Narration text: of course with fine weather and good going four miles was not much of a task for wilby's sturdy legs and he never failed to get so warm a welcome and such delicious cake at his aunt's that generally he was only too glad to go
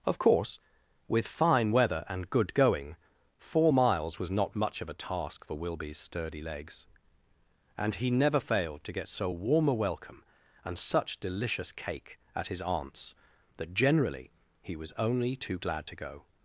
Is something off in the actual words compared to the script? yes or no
no